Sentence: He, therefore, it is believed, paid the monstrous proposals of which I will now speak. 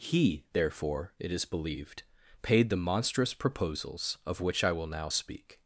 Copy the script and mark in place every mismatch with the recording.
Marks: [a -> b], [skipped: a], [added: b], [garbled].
He, therefore, it is believed, paid the monstrous proposals of which I will now speak.